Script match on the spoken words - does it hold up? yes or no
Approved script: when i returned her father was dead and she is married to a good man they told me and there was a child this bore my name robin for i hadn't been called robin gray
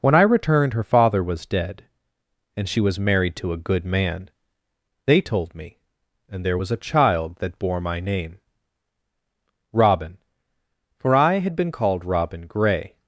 no